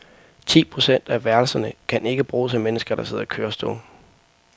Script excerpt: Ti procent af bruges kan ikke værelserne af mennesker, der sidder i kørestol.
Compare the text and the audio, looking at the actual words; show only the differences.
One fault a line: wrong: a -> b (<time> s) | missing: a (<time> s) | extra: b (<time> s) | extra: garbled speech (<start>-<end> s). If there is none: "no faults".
wrong: bruges -> værelserne (1.2 s)
wrong: værelserne -> bruges (2.2 s)